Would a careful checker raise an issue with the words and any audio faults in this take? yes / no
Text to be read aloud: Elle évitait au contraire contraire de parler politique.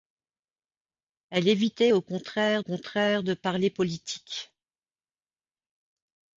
no